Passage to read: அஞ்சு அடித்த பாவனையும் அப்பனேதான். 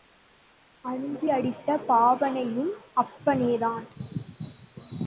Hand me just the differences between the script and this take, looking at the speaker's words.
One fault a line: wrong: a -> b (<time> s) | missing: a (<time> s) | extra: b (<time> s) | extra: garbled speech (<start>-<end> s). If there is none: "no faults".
no faults